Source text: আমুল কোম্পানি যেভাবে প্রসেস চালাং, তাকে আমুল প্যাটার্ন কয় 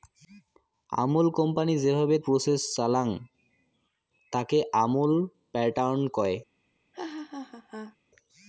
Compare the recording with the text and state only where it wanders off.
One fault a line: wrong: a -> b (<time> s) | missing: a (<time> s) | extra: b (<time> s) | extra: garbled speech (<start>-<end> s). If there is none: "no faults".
no faults